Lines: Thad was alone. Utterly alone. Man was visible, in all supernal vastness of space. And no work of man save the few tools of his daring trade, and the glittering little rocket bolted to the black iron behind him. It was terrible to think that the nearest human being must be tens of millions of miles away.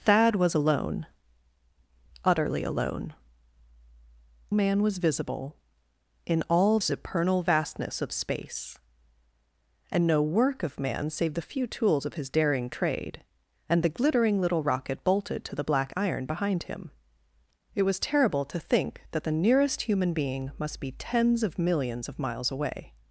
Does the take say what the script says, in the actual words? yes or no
yes